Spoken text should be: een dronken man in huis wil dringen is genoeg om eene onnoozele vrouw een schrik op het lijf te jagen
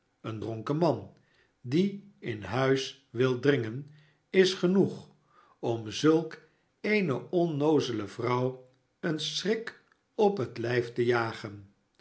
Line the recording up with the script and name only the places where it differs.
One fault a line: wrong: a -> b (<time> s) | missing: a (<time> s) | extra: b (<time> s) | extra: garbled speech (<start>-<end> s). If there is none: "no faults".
extra: die (1.6 s)
extra: zulk (5.9 s)